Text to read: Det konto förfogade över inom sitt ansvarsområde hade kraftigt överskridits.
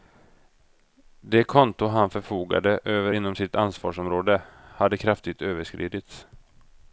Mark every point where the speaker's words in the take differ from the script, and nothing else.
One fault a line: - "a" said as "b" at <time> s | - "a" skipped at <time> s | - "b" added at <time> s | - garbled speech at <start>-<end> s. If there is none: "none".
- "han" added at 1.9 s